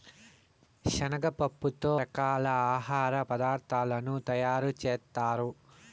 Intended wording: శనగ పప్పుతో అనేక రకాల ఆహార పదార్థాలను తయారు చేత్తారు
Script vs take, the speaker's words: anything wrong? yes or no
yes